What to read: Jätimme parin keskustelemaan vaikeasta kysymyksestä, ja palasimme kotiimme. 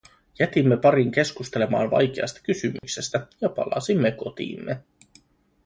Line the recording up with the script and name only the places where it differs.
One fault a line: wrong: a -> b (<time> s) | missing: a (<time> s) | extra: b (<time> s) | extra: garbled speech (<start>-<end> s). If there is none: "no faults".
no faults